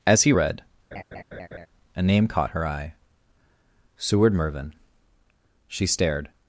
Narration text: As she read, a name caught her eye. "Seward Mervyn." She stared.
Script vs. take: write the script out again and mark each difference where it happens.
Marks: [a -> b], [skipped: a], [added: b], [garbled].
As [she -> he] read, a name caught her eye. "Seward Mervyn." She stared.